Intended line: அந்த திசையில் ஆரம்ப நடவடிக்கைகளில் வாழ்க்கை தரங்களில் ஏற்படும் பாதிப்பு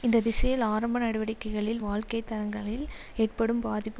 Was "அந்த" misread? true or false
true